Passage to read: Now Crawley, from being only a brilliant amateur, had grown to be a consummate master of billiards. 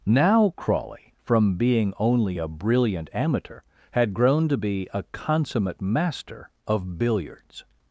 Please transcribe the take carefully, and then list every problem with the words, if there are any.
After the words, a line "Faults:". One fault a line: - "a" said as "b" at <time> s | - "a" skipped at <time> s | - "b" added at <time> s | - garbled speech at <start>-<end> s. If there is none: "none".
Now Crawley, from being only a brilliant amateur, had grown to be a consummate master of billiards.
Faults:
none